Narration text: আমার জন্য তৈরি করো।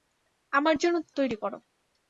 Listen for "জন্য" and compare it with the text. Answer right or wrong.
right